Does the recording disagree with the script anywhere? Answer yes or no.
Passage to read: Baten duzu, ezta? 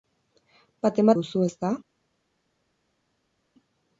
no